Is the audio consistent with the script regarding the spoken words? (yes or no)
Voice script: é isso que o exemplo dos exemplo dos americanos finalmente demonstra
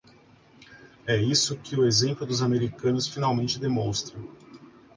no